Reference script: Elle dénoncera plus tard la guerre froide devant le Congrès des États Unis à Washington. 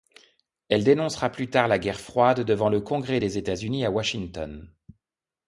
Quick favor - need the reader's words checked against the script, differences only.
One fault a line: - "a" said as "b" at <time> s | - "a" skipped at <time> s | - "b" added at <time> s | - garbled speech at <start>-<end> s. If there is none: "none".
none